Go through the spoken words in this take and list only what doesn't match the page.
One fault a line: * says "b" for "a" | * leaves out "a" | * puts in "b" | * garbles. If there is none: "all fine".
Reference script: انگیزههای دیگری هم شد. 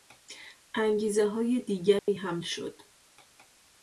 all fine